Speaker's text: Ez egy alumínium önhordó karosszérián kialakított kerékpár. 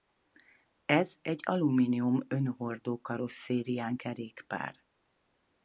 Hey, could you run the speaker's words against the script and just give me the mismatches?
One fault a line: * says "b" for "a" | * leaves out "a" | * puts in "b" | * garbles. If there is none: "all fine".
* leaves out "kialakított"